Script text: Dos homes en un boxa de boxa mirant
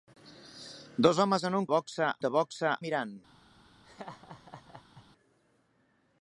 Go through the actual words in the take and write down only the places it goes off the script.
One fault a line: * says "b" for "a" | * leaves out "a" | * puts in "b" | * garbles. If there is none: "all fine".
all fine